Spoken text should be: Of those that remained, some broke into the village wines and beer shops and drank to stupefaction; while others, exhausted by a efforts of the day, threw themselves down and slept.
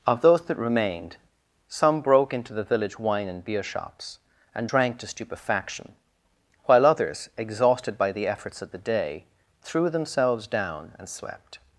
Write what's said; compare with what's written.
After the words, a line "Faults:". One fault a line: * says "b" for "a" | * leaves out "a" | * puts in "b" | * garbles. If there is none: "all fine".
Of those that remained, some broke into the village wine and beer shops and drank to stupefaction; while others, exhausted by the efforts of the day, threw themselves down and slept.
Faults:
* says "wine" for "wines"
* says "the" for "a"